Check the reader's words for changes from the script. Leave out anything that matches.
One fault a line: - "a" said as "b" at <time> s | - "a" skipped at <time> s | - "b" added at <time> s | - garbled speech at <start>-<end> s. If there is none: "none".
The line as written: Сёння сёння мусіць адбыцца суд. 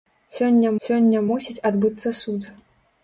none